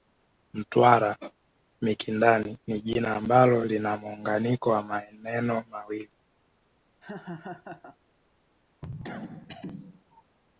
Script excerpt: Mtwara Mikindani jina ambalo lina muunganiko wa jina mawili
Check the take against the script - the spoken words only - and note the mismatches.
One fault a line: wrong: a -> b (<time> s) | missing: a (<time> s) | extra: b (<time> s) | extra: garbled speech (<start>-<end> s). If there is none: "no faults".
extra: ni (2.7 s)
wrong: jina -> maneno (4.8 s)